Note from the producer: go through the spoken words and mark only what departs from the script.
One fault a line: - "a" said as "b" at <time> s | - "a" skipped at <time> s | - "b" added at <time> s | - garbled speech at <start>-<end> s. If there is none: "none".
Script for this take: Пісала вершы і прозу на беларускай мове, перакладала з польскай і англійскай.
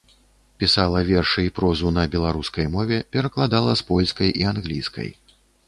none